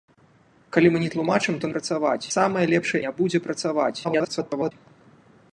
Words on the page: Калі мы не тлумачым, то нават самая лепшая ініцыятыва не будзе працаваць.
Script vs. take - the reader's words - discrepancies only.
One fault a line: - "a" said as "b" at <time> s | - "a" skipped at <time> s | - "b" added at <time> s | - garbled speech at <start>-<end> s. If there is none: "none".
- "нават" said as "працаваць" at 1.8 s
- "ініцыятыва" skipped at 3.0 s
- garbled speech at 4.0-4.7 s